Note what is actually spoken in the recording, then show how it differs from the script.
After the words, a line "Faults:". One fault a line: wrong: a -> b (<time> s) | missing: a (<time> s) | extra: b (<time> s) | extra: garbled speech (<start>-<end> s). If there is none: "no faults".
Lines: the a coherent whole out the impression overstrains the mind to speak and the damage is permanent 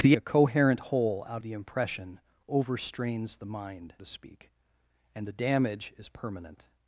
the a coherent whole out the impression overstrains the mind to speak and the damage is permanent
Faults:
no faults